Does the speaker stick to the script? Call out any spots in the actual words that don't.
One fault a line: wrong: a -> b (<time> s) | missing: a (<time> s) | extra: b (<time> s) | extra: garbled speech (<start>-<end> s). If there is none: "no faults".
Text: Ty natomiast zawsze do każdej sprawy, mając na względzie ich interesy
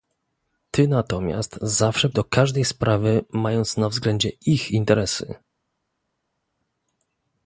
no faults